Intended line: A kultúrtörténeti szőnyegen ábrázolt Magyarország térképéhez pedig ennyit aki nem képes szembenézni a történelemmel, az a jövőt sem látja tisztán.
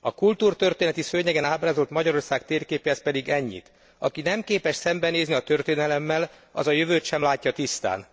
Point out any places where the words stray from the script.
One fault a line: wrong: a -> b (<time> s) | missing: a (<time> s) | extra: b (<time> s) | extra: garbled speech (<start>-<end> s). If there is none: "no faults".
no faults